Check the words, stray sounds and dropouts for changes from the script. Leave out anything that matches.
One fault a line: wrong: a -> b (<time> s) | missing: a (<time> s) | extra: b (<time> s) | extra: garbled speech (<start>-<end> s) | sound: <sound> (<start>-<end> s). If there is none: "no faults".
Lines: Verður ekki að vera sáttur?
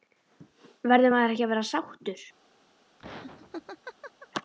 extra: maður (1.1 s)
sound: laugh (3.0-4.3 s)